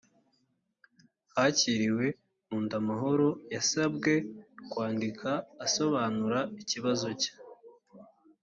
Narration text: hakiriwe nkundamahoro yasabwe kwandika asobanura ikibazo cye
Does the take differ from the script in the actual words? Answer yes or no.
no